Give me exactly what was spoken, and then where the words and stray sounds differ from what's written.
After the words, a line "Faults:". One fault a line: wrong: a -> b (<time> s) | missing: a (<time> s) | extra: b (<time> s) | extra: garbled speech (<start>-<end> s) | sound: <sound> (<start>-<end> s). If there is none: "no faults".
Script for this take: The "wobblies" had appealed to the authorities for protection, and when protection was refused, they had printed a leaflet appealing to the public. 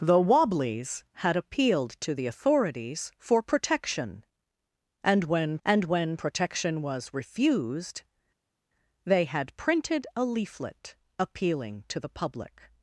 The "wobblies" had appealed to the authorities for protection, and when and when protection was refused, they had printed a leaflet appealing to the public.
Faults:
extra: and when (5.6 s)